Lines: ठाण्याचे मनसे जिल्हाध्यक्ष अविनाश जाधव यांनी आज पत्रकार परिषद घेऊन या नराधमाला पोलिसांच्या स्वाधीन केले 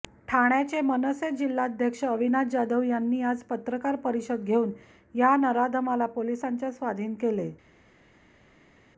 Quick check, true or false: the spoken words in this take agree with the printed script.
true